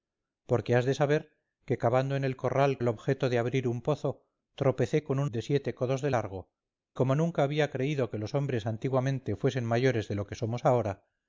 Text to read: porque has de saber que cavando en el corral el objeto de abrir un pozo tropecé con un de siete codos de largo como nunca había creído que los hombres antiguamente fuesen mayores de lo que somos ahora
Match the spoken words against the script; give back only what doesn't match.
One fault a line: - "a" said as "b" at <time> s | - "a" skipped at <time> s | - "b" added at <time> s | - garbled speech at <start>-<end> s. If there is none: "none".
none